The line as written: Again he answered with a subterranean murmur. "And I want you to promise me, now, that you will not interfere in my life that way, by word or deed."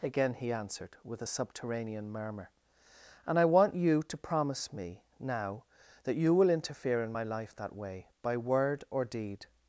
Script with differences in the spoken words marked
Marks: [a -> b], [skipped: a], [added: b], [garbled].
Again he answered with a subterranean murmur. "And I want you to promise me, now, that you will [skipped: not] interfere in my life that way, by word or deed."